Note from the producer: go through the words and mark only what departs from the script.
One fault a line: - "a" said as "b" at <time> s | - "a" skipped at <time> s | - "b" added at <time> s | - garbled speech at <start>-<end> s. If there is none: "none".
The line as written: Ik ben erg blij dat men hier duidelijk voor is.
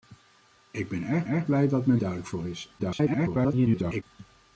- "erg" added at 1.2 s
- "hier" skipped at 2.0 s
- garbled speech at 2.8-4.0 s